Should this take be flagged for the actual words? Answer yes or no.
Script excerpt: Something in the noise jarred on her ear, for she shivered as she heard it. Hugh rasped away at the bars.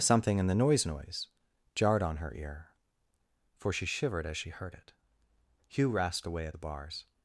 yes